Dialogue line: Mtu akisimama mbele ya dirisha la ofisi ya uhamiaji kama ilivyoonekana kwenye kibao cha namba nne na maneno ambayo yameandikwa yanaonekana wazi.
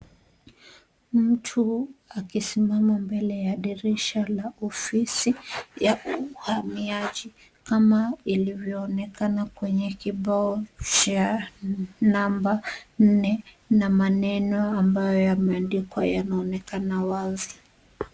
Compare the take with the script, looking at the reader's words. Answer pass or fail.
pass